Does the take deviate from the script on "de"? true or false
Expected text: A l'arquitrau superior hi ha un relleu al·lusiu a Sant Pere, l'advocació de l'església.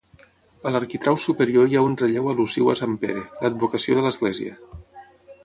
false